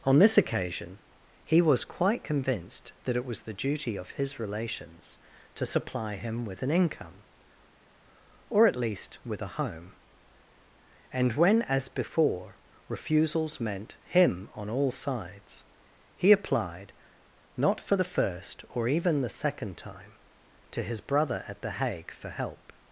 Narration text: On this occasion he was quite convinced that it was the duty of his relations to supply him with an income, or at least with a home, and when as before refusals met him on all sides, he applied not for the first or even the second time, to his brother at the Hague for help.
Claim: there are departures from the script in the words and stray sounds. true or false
true